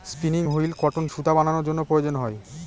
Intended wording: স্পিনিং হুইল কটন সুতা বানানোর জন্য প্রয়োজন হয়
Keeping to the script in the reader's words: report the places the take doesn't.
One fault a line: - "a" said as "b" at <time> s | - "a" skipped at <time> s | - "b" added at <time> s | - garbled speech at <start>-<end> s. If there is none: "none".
none